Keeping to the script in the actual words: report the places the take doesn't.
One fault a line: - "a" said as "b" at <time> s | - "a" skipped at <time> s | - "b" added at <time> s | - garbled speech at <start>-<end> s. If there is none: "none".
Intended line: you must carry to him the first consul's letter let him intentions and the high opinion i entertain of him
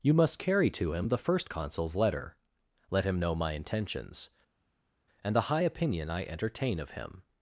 - "know my" added at 3.2 s